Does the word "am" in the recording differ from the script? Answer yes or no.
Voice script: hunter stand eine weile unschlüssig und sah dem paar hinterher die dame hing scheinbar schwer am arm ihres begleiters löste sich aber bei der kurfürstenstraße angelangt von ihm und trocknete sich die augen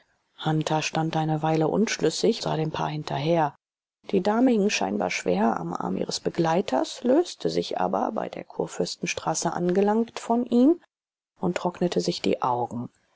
no